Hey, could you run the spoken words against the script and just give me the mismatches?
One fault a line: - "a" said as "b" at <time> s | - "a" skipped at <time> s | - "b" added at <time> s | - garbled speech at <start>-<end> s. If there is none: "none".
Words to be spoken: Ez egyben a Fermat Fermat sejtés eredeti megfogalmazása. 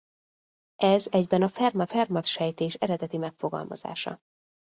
none